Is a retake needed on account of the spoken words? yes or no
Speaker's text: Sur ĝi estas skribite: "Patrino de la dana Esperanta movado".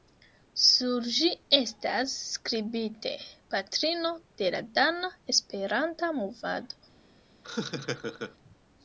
no